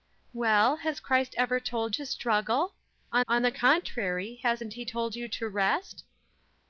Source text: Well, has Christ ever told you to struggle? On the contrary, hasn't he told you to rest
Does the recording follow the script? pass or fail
fail